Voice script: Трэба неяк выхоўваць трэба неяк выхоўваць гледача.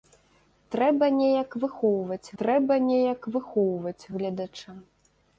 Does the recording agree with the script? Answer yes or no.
yes